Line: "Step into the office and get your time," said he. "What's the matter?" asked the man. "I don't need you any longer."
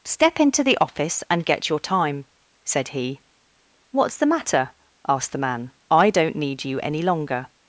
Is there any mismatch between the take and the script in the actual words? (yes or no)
no